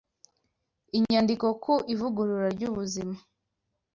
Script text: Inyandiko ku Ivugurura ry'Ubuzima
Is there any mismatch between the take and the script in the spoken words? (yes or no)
no